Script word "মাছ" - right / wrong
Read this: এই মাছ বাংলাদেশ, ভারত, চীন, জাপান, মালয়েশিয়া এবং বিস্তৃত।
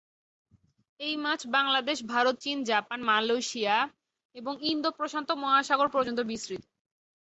right